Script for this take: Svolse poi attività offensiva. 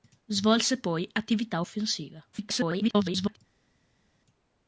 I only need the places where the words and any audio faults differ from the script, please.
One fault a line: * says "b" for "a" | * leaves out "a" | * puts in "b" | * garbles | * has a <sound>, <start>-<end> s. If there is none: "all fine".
* garbles